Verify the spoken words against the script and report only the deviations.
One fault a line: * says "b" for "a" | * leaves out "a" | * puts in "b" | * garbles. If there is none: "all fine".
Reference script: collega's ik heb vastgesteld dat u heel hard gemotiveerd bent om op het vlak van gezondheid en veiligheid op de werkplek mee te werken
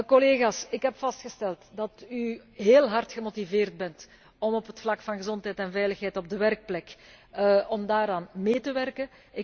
all fine